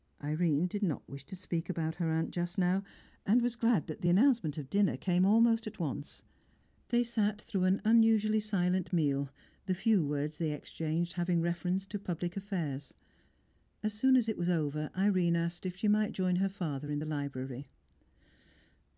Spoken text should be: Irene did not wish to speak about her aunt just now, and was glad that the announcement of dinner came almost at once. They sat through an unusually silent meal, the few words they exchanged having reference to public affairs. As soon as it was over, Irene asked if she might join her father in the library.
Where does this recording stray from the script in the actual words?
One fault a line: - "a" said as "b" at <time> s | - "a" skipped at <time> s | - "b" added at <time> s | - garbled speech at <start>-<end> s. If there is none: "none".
none